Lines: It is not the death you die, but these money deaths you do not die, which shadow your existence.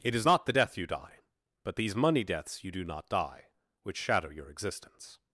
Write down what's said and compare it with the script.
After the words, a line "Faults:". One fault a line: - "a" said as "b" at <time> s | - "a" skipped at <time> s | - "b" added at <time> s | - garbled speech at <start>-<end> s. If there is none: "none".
It is not the death you die, but these money deaths you do not die, which shadow your existence.
Faults:
none